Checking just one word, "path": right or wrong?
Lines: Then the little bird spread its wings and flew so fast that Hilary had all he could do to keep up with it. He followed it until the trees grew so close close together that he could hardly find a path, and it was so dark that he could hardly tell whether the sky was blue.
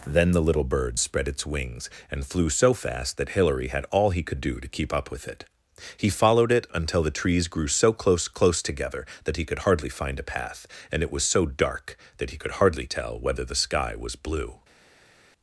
right